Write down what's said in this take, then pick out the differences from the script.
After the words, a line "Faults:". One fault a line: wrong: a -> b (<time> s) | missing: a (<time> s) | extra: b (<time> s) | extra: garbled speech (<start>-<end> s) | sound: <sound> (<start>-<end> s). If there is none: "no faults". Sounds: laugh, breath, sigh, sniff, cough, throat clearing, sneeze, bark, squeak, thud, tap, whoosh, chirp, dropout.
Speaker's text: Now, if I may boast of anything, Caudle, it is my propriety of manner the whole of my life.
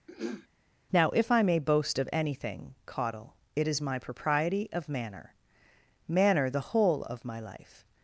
Now, if I may boast of anything, Caudle, it is my propriety of manner manner the whole of my life.
Faults:
sound: throat clearing (0.1-0.5 s)
extra: manner (6.1 s)